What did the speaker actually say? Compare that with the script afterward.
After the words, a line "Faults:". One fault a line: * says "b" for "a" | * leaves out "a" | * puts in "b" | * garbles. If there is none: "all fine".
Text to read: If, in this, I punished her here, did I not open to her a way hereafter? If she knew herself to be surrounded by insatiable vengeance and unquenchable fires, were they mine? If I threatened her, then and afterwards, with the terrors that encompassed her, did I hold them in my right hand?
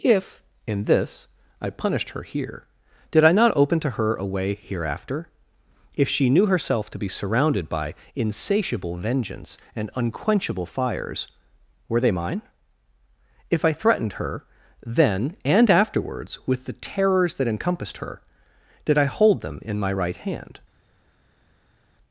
If, in this, I punished her here, did I not open to her a way hereafter? If she knew herself to be surrounded by insatiable vengeance and unquenchable fires, were they mine? If I threatened her, then and afterwards, with the terrors that encompassed her, did I hold them in my right hand?
Faults:
all fine